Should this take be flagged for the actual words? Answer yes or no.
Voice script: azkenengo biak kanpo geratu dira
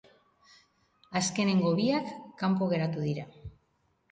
no